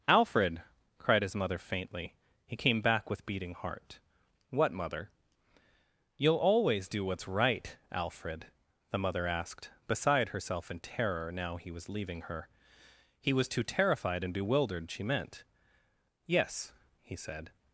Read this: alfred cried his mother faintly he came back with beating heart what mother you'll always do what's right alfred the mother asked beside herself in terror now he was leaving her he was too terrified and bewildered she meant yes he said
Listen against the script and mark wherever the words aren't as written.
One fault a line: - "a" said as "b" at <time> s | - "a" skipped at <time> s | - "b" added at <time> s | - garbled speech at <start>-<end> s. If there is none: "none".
none